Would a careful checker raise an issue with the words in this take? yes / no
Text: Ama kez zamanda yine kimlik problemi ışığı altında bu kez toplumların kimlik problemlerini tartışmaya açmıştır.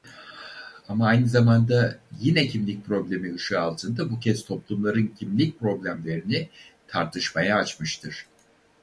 yes